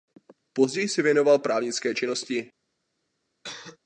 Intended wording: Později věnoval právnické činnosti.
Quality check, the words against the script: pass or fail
fail